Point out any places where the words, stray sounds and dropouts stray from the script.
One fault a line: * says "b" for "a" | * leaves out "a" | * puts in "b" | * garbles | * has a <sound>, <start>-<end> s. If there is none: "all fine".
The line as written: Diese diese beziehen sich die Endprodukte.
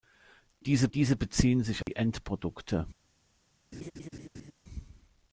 * has a dropout, 1.8-1.9 s
* has a laugh, 3.7-4.5 s